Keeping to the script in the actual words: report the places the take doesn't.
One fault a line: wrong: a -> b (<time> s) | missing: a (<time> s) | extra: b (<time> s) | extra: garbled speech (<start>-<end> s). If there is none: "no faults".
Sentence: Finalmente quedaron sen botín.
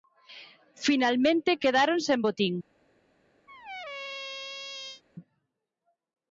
no faults